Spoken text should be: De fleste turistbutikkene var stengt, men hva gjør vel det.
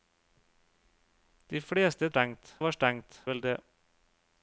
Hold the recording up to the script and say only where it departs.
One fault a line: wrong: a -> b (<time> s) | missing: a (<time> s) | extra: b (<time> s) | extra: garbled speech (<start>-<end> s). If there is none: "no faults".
wrong: turistbutikkene -> stengt (2.1 s)
missing: men hva gjør (3.2 s)